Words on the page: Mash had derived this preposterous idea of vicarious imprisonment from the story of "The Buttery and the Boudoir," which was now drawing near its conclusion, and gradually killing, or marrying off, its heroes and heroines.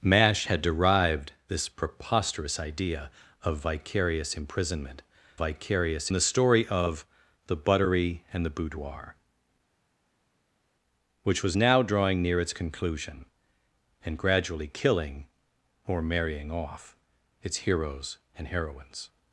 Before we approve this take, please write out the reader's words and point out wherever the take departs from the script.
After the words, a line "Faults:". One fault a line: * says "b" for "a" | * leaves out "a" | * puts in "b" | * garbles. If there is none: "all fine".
Mash had derived this preposterous idea of vicarious imprisonment vicarious the story of "The Buttery and the Boudoir," which was now drawing near its conclusion, and gradually killing, or marrying off, its heroes and heroines.
Faults:
* says "vicarious" for "from"